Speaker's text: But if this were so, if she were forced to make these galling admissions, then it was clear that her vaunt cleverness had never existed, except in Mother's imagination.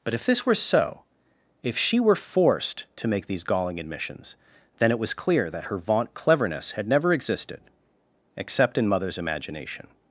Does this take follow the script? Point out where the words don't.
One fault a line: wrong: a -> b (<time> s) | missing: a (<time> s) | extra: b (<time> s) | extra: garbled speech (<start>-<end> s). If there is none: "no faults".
no faults